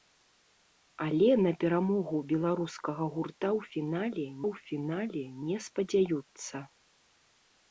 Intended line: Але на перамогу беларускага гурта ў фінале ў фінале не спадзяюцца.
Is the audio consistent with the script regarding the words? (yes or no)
yes